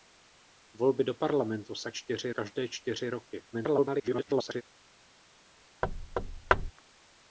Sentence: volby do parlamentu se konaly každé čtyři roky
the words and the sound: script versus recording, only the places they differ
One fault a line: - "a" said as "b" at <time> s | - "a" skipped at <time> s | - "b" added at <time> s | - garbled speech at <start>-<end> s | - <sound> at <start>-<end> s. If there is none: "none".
- "konaly" said as "čtyři" at 1.9 s
- garbled speech at 3.5-4.6 s
- thud at 5.8-6.7 s